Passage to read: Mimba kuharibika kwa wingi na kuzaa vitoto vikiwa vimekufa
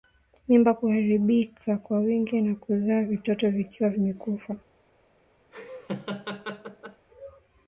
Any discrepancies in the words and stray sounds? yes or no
yes